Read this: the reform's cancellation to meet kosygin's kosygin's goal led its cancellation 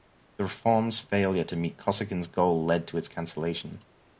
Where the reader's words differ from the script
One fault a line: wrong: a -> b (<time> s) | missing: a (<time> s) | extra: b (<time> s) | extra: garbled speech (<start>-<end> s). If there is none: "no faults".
wrong: cancellation -> failure (1.0 s)
missing: kosygin's (2.3 s)
extra: to (2.9 s)